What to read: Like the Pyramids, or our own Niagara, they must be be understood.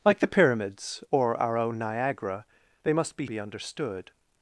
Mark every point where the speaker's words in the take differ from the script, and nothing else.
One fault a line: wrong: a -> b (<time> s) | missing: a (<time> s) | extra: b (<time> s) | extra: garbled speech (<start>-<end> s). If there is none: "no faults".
no faults